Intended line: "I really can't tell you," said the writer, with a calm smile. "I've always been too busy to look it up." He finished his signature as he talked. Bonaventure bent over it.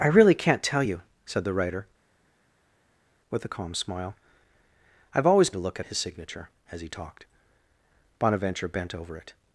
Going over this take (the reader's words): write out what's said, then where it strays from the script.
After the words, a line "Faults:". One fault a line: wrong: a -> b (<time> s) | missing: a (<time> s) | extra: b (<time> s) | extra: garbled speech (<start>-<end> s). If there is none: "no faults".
"I really can't tell you," said the writer, with a calm smile. "I've always to look it his signature as he talked. Bonaventure bent over it.
Faults:
missing: been too busy (5.5 s)
missing: up He finished (5.9 s)